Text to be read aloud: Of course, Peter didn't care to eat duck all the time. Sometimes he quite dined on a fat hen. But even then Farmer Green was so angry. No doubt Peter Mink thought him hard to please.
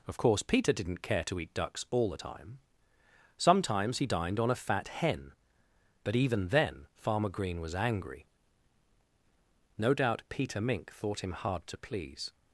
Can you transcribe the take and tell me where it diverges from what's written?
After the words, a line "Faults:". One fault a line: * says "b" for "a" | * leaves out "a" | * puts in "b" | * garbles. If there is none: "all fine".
Of course, Peter didn't care to eat ducks all the time. Sometimes he dined on a fat hen. But even then Farmer Green was angry. No doubt Peter Mink thought him hard to please.
Faults:
* says "ducks" for "duck"
* leaves out "quite"
* leaves out "so"